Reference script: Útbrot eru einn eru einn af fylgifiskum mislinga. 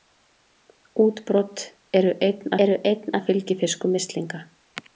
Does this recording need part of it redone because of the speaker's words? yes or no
no